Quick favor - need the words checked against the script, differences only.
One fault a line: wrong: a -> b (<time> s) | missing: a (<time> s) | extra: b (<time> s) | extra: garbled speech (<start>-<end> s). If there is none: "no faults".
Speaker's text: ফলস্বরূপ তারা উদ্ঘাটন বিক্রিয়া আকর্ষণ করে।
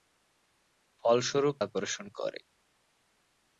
missing: তারা উদ্ঘাটন বিক্রিয়া (1.6 s)